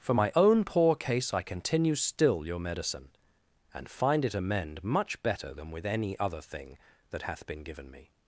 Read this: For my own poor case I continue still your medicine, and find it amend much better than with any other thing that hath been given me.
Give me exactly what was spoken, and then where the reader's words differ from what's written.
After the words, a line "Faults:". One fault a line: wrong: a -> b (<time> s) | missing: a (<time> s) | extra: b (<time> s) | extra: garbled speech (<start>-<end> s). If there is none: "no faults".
For my own poor case I continue still your medicine, and find it amend much better than with any other thing that hath been given me.
Faults:
no faults